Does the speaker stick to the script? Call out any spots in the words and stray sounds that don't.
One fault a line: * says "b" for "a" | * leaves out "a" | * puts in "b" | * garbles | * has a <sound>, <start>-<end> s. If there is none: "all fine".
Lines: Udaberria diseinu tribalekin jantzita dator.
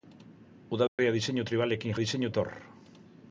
* has a dropout, 0.9-1.0 s
* says "diseinu" for "jantzita"